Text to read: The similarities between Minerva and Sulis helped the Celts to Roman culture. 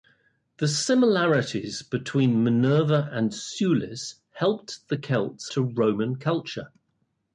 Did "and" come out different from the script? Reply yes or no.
no